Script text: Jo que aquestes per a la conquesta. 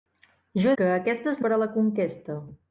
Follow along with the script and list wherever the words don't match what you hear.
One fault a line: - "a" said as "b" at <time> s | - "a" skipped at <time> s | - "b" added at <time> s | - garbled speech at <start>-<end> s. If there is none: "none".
none